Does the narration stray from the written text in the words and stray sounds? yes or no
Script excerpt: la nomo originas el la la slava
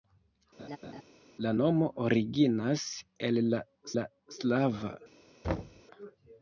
yes